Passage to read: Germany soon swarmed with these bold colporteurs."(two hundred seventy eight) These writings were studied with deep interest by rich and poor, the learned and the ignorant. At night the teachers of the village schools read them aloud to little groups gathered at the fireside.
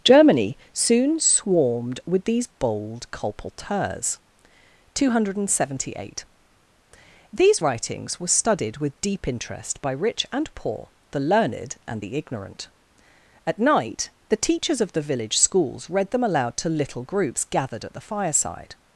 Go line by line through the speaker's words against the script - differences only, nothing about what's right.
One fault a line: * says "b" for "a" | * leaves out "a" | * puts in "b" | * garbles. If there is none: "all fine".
all fine